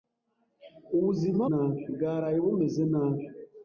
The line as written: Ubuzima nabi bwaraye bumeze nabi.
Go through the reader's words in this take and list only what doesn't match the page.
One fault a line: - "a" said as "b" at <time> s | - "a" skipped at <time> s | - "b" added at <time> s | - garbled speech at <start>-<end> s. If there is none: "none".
none